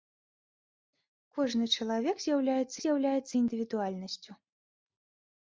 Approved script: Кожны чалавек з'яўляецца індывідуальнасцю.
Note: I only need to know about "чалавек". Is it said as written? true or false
true